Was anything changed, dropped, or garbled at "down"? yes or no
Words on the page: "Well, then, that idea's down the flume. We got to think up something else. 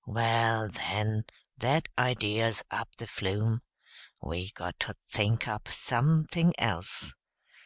yes